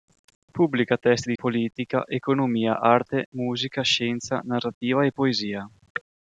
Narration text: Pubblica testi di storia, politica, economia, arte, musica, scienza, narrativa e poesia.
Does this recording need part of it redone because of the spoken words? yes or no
yes